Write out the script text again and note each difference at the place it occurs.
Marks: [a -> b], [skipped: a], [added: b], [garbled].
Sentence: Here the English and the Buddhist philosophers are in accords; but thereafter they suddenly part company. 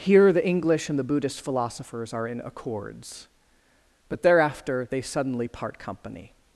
Here the English and the Buddhist philosophers are in accords; but thereafter they suddenly part company.